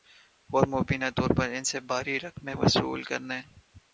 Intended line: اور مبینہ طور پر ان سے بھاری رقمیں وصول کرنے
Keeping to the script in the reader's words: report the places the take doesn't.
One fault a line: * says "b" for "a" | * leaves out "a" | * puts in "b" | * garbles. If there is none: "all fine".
all fine